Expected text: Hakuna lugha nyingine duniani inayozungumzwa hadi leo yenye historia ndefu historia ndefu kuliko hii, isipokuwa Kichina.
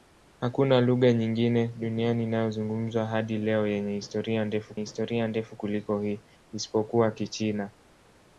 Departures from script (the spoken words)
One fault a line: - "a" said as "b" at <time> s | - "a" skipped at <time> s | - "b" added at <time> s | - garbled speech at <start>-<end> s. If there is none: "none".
none